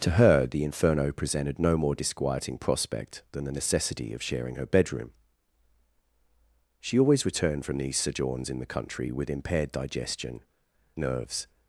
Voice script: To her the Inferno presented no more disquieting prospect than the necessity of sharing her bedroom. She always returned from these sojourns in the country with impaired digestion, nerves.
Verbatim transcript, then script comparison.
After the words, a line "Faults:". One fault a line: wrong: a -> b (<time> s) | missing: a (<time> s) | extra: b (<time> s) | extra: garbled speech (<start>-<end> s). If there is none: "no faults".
To her the Inferno presented no more disquieting prospect than the necessity of sharing her bedroom. She always returned from these sojourns in the country with impaired digestion, nerves.
Faults:
no faults